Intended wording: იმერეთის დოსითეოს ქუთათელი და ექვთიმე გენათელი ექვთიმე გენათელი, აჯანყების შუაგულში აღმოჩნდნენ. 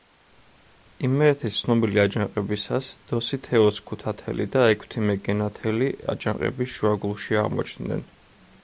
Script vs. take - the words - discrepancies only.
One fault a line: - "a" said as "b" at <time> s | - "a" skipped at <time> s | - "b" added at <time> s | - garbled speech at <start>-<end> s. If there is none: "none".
- "ცნობილი აჯანყებისას" added at 1.6 s
- "ექვთიმე გენათელი" skipped at 5.9 s